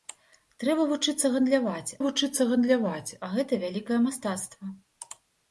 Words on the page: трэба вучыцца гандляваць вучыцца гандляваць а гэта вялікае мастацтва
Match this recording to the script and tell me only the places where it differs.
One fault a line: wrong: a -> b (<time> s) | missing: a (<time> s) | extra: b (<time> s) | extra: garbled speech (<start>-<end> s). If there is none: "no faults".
no faults